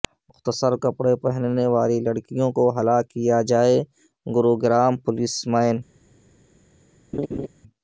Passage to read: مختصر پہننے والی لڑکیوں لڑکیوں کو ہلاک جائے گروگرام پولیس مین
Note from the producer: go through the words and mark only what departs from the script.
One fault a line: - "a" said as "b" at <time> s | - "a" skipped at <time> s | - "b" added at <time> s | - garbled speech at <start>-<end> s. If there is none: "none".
- "کپڑے" added at 0.8 s
- "لڑکیوں" skipped at 2.5 s
- "کیا" added at 3.1 s